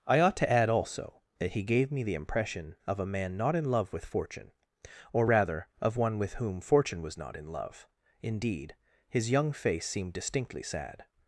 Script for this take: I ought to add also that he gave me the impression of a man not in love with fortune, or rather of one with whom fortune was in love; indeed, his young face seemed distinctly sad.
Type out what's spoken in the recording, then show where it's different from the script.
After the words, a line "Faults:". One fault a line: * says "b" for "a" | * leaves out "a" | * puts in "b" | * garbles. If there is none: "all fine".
I ought to add also that he gave me the impression of a man not in love with fortune, or rather of one with whom fortune was not in love; indeed, his young face seemed distinctly sad.
Faults:
* puts in "not"